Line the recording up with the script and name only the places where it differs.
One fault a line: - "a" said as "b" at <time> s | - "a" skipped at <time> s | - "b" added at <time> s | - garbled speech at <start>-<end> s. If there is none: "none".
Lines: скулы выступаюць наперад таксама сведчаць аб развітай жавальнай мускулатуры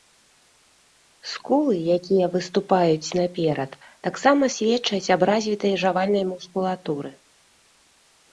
- "якія" added at 2.0 s